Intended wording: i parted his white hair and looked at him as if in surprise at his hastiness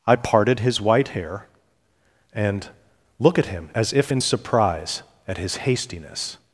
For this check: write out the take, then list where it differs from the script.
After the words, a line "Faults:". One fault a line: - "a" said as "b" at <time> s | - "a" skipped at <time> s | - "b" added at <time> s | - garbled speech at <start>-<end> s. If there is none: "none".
i parted his white hair and look at him as if in surprise at his hastiness
Faults:
- "looked" said as "look" at 3.2 s